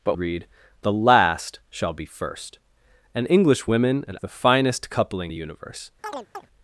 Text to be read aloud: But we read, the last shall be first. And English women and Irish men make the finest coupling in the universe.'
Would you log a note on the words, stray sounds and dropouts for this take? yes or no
yes